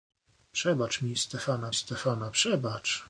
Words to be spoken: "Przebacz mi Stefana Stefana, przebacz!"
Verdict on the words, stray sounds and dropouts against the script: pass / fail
pass